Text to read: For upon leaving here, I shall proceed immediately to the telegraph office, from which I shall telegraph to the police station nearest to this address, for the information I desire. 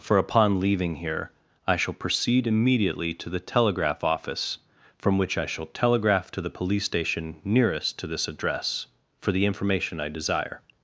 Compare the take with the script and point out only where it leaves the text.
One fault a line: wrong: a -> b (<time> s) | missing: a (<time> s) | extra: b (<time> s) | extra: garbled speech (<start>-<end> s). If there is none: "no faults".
no faults